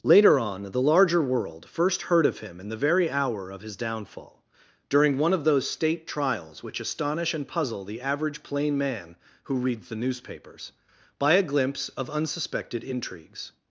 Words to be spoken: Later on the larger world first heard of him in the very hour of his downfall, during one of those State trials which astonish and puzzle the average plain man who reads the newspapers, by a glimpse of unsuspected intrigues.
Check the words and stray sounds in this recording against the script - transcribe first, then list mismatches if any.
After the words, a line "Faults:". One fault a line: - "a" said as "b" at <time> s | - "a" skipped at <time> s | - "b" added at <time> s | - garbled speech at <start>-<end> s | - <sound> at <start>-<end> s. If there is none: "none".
Later on the larger world first heard of him in the very hour of his downfall, during one of those State trials which astonish and puzzle the average plain man who reads the newspapers, by a glimpse of unsuspected intrigues.
Faults:
none